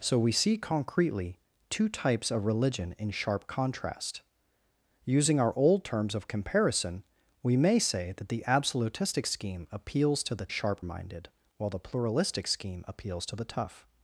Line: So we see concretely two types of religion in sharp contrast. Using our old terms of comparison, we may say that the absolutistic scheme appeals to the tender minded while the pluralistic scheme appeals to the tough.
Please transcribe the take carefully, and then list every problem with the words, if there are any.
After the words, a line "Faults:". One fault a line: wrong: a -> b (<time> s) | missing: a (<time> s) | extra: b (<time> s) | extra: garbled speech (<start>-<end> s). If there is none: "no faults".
So we see concretely two types of religion in sharp contrast. Using our old terms of comparison, we may say that the absolutistic scheme appeals to the sharp minded while the pluralistic scheme appeals to the tough.
Faults:
wrong: tender -> sharp (10.5 s)